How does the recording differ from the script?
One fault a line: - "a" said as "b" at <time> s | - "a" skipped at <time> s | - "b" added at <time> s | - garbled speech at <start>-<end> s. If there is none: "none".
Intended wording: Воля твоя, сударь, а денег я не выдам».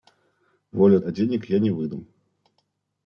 - "твоя сударь" skipped at 1.0 s